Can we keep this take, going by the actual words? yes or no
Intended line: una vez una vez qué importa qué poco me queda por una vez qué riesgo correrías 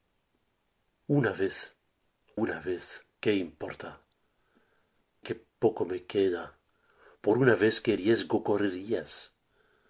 yes